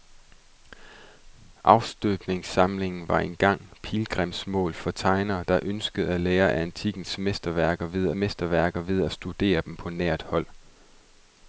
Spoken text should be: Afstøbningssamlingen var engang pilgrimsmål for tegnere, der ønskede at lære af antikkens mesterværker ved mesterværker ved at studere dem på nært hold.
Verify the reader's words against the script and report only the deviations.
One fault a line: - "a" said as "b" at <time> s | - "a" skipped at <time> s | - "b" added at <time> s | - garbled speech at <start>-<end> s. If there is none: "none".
none